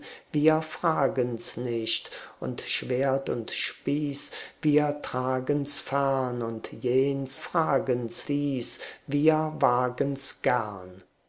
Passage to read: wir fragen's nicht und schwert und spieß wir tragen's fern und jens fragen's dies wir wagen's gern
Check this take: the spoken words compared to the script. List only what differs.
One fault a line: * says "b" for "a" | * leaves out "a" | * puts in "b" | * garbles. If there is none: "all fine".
all fine